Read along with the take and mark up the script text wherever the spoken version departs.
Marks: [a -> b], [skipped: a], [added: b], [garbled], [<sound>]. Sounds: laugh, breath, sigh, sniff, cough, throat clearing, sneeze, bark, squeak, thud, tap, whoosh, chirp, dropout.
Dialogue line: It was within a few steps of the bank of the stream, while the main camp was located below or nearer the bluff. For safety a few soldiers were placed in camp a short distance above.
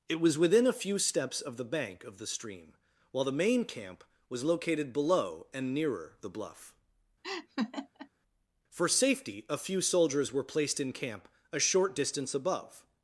It was within a few steps of the bank of the stream, while the main camp was located below [or -> and] nearer the bluff. [laugh] For safety a few soldiers were placed in camp a short distance above.